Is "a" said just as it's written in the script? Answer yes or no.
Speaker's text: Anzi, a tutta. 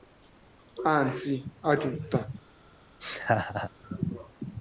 yes